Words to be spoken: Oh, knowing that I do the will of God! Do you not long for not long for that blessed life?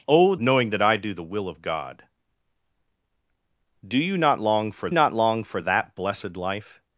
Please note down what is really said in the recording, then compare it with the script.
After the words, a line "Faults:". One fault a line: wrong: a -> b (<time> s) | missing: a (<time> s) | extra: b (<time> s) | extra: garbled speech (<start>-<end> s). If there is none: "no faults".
Oh, knowing that I do the will of God! Do you not long for not long for that blessed life?
Faults:
no faults